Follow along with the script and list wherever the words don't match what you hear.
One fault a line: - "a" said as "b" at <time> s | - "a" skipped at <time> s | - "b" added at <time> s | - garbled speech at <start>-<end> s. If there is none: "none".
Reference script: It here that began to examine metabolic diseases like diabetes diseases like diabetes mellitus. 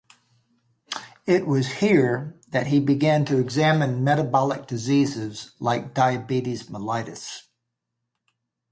- "was" added at 1.4 s
- "he" added at 2.6 s
- "diseases like diabetes" skipped at 6.7 s